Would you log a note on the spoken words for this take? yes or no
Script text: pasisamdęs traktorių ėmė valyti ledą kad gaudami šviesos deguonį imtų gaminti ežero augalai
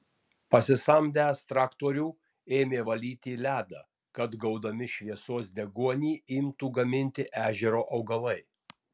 no